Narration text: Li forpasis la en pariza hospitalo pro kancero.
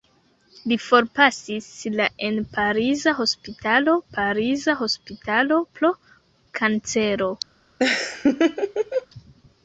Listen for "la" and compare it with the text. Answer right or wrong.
right